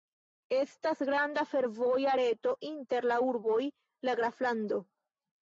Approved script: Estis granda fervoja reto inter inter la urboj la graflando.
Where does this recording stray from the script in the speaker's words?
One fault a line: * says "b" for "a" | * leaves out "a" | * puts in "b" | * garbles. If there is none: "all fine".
* says "Estas" for "Estis"
* leaves out "inter"